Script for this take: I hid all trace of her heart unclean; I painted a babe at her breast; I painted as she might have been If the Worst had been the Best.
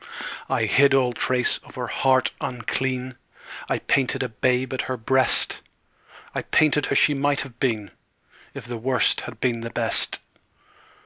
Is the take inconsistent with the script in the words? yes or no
no